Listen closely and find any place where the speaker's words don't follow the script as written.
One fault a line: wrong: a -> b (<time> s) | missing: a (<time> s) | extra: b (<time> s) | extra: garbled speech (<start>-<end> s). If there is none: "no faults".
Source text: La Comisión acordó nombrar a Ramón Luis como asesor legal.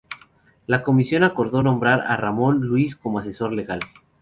no faults